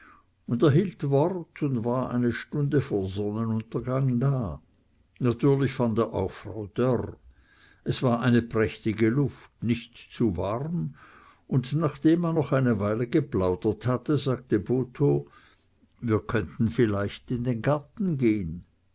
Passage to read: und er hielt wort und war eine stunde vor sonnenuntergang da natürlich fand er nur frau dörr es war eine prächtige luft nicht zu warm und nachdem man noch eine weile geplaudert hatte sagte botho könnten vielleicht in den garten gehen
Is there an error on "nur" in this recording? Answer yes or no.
yes